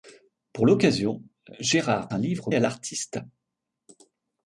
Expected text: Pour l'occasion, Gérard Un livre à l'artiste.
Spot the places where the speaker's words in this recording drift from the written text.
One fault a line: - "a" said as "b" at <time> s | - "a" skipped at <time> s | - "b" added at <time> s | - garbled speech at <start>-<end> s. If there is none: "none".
none